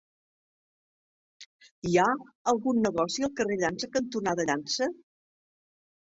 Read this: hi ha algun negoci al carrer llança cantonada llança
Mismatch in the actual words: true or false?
false